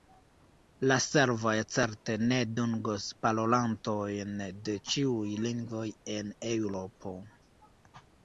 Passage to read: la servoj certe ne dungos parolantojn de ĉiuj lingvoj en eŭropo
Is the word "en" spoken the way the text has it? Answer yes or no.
yes